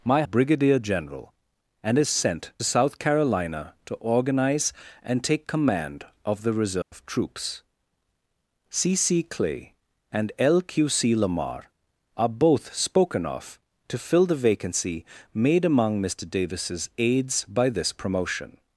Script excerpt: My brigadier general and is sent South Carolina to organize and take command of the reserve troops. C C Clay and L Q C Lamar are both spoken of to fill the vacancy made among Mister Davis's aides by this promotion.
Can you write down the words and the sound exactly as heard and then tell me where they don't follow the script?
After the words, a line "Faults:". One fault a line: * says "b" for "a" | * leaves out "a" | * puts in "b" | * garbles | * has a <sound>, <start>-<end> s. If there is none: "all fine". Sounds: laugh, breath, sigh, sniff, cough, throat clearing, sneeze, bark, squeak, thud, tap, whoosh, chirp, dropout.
My brigadier general and is sent South Carolina to organize and take command of the reserve troops. C C Clay and L Q C Lamar are both spoken of to fill the vacancy made among Mister Davis's aides by this promotion.
Faults:
* has a dropout, 6.8-6.9 s